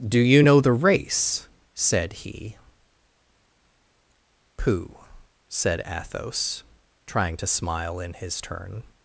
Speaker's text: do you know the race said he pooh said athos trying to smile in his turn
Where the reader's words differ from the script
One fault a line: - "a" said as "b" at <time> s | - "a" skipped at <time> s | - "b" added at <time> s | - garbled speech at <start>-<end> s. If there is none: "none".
none